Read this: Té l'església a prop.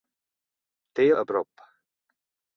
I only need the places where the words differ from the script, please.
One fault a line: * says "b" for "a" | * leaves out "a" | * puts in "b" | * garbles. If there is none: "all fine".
* leaves out "l'església"